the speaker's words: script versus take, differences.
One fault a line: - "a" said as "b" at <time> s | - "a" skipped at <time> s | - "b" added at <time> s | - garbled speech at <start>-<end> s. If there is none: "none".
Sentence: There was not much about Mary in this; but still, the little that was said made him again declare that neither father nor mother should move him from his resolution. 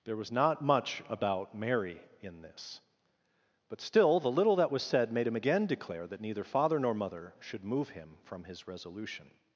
none